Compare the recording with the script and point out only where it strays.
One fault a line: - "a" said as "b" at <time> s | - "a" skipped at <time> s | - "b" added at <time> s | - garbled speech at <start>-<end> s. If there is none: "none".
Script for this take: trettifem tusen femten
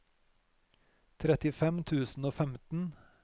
- "og" added at 2.2 s